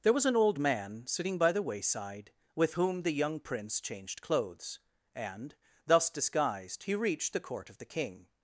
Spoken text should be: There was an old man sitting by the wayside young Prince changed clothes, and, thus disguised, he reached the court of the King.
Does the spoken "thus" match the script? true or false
true